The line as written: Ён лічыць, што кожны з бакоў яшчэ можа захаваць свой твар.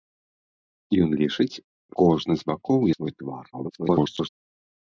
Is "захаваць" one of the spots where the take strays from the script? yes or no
yes